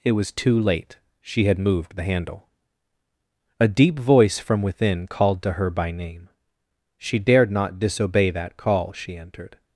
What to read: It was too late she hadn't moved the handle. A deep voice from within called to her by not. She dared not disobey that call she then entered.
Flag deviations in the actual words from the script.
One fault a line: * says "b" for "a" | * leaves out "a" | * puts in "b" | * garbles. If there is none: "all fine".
* says "had" for "hadn't"
* says "name" for "not"
* leaves out "then"